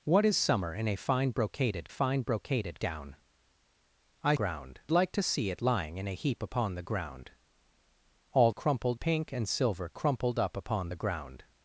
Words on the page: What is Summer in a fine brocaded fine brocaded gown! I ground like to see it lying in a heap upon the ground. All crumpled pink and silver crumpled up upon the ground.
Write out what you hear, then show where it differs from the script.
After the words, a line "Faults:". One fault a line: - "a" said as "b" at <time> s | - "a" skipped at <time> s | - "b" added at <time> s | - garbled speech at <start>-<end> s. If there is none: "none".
What is Summer in a fine brocaded fine brocaded gown! I ground like to see it lying in a heap upon the ground. All crumpled pink and silver crumpled up upon the ground.
Faults:
none